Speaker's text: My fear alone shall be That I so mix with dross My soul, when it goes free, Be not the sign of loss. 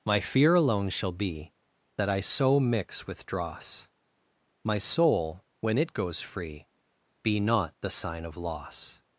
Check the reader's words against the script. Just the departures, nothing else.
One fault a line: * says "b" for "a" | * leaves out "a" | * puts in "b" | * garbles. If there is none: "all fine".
all fine